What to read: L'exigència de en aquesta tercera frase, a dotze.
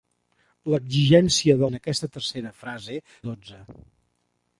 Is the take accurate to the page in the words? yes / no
yes